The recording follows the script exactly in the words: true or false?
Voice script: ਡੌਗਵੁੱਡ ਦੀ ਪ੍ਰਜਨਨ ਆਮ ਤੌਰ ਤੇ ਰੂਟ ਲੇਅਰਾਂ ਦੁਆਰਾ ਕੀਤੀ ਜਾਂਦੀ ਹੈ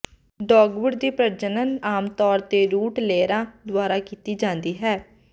true